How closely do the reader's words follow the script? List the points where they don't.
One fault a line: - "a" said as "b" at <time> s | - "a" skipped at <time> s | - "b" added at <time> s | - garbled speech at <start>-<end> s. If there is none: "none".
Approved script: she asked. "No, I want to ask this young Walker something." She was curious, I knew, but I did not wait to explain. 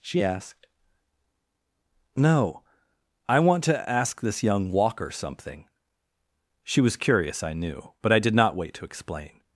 none